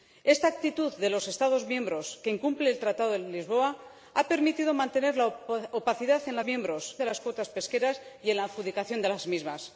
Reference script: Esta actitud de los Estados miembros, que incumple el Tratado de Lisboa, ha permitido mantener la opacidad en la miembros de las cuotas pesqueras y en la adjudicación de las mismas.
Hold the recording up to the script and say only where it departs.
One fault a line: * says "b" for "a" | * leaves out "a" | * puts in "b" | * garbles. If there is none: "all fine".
all fine